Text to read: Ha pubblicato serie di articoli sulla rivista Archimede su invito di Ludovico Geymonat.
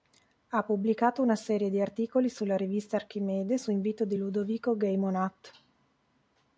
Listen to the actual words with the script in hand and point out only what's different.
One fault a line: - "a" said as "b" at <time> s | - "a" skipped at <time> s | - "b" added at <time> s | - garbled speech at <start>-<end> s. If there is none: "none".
- "una" added at 1.2 s